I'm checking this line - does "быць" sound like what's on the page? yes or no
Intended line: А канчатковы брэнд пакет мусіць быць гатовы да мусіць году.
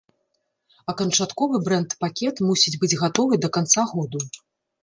yes